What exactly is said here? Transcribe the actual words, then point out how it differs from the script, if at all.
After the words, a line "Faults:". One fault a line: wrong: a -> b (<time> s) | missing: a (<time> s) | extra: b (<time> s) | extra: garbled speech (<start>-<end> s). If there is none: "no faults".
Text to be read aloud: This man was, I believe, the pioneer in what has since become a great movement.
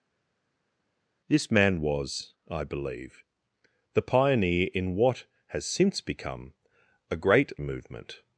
This man was, I believe, the pioneer in what has since become a great movement.
Faults:
no faults